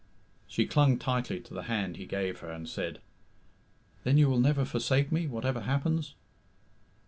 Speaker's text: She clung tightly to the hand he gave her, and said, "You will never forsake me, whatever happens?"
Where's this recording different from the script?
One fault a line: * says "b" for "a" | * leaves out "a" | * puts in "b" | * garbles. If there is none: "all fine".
* puts in "Then"